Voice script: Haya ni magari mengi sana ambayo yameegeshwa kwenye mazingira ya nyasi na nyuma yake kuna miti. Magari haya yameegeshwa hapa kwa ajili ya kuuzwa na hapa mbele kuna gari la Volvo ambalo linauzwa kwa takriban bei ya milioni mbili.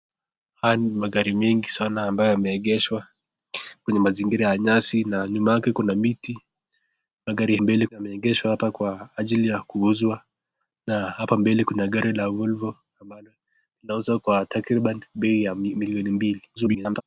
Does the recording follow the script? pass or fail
fail